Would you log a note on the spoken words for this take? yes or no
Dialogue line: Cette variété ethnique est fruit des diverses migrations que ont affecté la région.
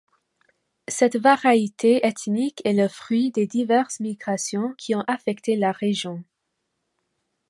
yes